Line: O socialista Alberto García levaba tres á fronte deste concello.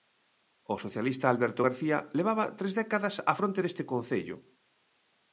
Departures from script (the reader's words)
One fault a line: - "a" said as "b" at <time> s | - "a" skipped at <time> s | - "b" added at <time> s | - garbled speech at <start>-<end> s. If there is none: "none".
- "décadas" added at 2.8 s